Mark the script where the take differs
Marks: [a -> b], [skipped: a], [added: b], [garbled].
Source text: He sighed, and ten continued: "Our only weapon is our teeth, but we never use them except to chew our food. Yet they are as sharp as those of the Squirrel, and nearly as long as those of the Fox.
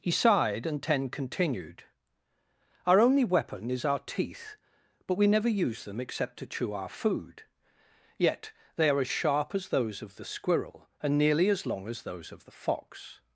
He sighed, and ten continued: "Our only weapon is our teeth, but we never use them except to chew our food. Yet they are as sharp as those of the Squirrel, and nearly as long as those of the Fox.